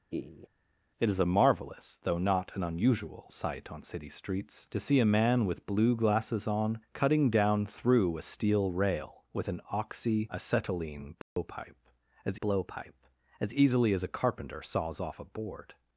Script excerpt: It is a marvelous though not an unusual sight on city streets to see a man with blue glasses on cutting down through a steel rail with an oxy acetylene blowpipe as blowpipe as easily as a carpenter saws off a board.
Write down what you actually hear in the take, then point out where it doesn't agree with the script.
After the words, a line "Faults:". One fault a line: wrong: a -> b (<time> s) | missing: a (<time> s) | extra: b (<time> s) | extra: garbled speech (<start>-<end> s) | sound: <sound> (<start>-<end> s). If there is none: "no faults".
It is a marvelous though not an unusual sight on city streets to see a man with blue glasses on cutting down through a steel rail with an oxy acetylene blowpipe as blowpipe as easily as a carpenter saws off a board.
Faults:
sound: laugh (0.1-0.5 s)
sound: dropout (11.2-11.4 s)